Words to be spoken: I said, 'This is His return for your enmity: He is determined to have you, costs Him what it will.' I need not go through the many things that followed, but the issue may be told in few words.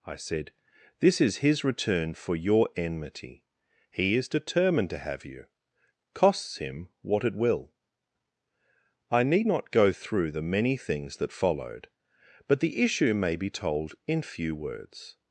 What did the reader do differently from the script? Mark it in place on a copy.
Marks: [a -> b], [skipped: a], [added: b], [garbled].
I said, 'This is His return for your enmity: He is determined to have you, costs Him what it will.' I need not go through the many things that followed, but the issue may be told in few words.